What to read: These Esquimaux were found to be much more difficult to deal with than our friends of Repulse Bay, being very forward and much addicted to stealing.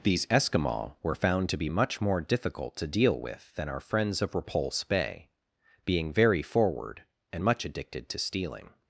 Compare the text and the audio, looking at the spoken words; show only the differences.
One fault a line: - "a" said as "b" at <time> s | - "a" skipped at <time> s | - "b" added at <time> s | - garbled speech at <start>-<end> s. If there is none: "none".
none